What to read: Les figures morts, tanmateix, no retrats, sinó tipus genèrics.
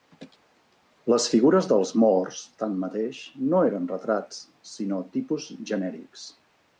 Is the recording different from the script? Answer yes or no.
yes